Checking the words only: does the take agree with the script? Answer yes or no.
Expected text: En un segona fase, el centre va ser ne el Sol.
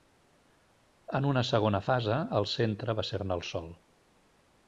no